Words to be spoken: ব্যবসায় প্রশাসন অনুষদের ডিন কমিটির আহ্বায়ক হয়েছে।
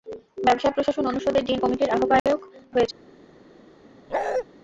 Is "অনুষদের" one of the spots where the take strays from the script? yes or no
no